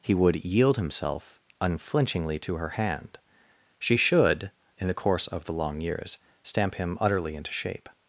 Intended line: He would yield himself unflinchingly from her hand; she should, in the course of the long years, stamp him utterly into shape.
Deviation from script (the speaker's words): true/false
true